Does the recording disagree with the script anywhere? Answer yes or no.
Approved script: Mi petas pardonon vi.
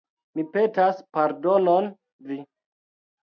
no